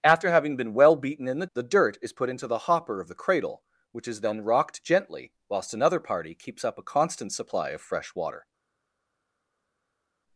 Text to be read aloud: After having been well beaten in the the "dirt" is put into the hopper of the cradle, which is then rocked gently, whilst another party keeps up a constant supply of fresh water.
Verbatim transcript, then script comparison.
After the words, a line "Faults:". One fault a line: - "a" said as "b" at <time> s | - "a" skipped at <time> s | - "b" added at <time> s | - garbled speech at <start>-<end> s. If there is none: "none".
After having been well beaten in the the "dirt" is put into the hopper of the cradle, which is then rocked gently, whilst another party keeps up a constant supply of fresh water.
Faults:
none